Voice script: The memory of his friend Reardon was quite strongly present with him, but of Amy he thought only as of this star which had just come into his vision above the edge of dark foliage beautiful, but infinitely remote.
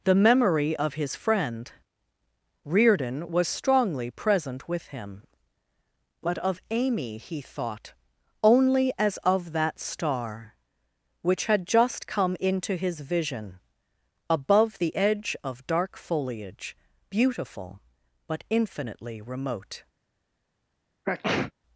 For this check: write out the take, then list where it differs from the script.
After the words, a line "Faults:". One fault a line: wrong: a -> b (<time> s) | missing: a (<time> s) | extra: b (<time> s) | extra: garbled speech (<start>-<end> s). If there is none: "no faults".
The memory of his friend Reardon was strongly present with him, but of Amy he thought only as of that star which had just come into his vision above the edge of dark foliage beautiful, but infinitely remote.
Faults:
missing: quite (3.5 s)
wrong: this -> that (9.5 s)